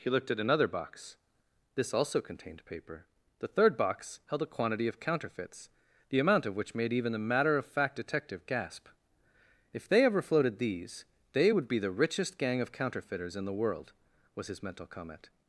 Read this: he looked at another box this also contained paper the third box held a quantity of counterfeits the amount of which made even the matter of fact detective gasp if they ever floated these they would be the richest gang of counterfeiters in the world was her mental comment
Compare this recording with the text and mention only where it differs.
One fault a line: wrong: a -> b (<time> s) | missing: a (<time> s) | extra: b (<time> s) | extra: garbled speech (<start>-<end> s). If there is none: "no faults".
wrong: her -> his (14.5 s)